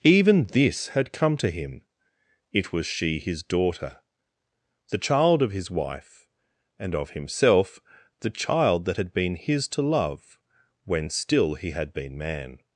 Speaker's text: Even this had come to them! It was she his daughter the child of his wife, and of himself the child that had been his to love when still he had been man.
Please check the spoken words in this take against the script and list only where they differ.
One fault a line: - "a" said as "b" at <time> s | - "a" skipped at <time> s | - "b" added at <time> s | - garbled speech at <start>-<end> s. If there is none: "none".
- "them" said as "him" at 1.5 s